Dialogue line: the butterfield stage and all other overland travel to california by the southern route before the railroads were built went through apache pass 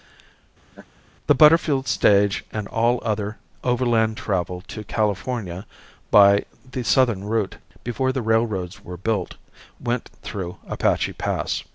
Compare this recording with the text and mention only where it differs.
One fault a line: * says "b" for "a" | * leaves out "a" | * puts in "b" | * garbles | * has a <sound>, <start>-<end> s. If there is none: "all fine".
* has a laugh, 0.7-0.9 s